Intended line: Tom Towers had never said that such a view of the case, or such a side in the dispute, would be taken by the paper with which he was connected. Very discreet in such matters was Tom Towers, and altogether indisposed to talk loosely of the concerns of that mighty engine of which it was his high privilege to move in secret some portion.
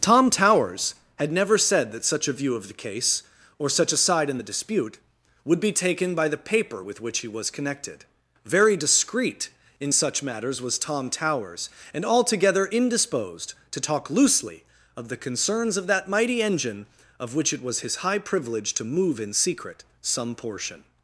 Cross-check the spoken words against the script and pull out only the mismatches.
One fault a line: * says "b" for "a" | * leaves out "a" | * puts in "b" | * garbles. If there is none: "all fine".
all fine